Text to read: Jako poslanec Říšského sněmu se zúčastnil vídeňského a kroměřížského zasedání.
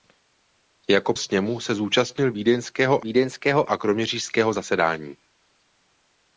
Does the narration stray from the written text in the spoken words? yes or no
yes